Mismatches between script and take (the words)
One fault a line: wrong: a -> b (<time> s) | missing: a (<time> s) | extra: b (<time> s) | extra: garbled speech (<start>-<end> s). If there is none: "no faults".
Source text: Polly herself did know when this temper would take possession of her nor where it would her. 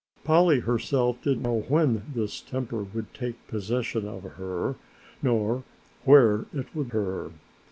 no faults